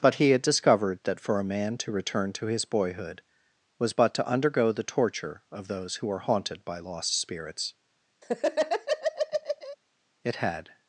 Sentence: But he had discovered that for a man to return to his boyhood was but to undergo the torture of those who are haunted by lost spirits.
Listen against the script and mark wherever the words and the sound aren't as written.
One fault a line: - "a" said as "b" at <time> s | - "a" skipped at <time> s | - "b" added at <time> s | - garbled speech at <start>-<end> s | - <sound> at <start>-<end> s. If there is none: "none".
- laugh at 8.2-9.8 s
- "It had" added at 10.2 s